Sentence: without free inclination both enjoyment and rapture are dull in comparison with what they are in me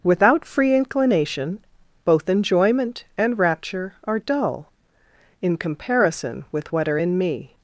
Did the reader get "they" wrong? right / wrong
wrong